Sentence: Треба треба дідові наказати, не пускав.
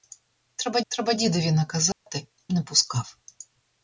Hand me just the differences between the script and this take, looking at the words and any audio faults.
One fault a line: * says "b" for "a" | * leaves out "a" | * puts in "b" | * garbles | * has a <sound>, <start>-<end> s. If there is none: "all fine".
* has a dropout, 1.9-2.1 s